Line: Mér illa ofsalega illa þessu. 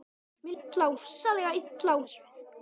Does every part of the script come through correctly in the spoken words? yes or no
yes